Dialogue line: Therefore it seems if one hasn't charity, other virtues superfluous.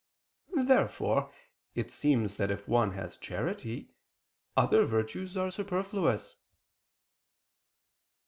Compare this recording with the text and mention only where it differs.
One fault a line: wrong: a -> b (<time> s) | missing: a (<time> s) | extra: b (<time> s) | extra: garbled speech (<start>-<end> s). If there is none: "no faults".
extra: that (2.4 s)
wrong: hasn't -> has (2.9 s)
extra: are (5.3 s)